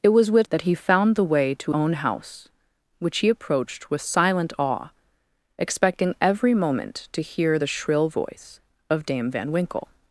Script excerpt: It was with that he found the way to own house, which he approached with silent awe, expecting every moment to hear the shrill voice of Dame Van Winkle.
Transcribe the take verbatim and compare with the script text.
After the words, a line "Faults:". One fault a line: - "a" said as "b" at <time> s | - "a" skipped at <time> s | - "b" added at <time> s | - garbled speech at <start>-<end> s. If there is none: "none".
It was with that he found the way to own house, which he approached with silent awe, expecting every moment to hear the shrill voice of Dame Van Winkle.
Faults:
none